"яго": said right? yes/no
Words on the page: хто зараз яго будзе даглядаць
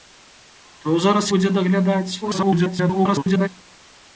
no